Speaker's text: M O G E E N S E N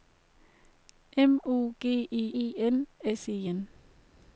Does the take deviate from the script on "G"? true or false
false